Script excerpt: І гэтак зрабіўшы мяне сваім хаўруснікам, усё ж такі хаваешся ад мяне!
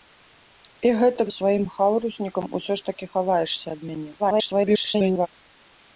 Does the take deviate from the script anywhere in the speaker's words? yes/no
yes